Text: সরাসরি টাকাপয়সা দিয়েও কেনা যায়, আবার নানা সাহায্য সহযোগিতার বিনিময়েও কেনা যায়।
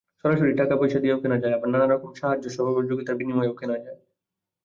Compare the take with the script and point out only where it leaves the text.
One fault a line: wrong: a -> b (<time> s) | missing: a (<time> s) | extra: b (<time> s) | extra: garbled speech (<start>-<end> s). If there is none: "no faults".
extra: রকম (1.9 s)